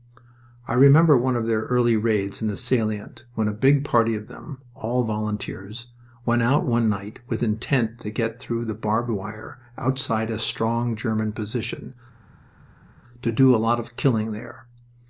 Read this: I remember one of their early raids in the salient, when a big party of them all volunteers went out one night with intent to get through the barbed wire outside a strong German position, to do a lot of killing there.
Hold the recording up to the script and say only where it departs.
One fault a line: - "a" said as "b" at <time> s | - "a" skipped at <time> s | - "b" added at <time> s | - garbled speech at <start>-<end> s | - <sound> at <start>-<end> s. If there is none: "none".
none